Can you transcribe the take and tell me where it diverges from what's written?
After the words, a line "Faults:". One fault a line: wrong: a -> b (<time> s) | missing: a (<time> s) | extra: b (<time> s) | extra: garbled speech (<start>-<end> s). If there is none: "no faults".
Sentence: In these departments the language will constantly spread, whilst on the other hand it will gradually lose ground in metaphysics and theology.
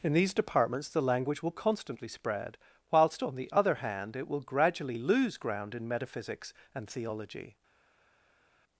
In these departments the language will constantly spread, whilst on the other hand it will gradually lose ground in metaphysics and theology.
Faults:
no faults